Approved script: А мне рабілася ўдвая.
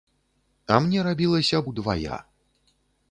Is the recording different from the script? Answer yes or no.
no